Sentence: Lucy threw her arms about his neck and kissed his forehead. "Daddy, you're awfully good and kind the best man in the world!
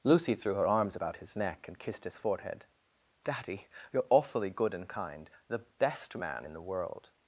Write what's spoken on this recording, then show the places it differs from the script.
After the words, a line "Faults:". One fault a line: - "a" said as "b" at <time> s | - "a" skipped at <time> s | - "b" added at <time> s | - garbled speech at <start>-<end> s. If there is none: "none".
Lucy threw her arms about his neck and kissed his forehead. "Daddy, you're awfully good and kind the best man in the world!
Faults:
none